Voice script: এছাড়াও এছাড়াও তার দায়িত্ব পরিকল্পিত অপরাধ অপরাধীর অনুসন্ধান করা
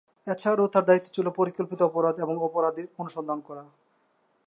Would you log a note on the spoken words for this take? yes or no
yes